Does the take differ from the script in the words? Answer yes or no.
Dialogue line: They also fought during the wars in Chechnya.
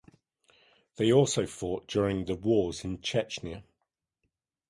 no